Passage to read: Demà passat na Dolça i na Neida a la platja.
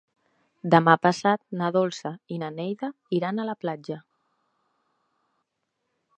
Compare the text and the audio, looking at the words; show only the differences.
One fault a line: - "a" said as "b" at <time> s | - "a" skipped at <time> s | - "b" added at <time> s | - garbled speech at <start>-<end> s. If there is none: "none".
- "iran" added at 3.2 s